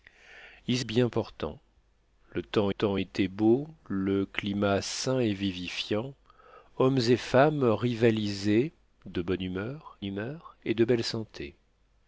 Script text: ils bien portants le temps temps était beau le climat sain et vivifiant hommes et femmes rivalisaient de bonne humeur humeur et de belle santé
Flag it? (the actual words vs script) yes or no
no